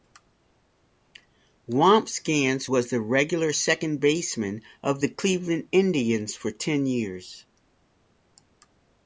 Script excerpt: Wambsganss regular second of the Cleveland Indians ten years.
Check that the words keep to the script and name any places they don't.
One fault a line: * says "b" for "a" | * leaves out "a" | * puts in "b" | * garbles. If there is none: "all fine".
* puts in "was the"
* puts in "baseman"
* puts in "for"